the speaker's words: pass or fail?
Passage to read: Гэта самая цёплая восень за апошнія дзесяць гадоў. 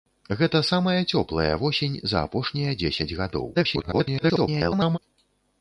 fail